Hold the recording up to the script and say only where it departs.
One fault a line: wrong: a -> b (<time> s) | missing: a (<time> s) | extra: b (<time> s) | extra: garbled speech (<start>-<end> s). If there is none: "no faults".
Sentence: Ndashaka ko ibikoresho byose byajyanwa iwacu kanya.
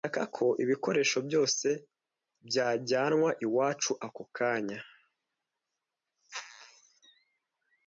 extra: ako (4.1 s)